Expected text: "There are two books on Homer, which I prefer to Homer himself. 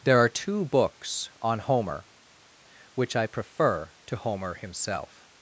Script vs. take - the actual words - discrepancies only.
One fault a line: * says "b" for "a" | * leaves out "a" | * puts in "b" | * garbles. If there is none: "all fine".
all fine